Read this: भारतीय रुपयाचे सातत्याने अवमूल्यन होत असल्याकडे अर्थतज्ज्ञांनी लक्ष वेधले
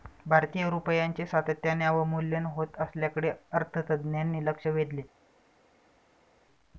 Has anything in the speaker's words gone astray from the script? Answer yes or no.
no